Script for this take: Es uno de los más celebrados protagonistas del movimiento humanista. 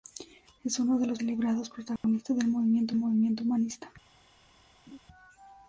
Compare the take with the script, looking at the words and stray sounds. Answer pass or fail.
fail